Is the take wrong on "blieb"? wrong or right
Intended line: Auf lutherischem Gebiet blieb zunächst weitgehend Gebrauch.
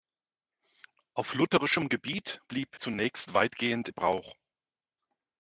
right